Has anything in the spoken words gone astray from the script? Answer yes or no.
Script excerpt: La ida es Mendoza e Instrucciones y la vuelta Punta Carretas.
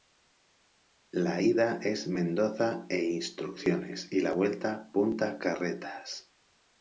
no